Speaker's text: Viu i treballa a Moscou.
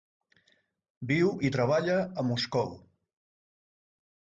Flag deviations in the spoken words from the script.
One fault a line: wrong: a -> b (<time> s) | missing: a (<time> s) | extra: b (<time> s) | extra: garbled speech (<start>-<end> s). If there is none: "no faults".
no faults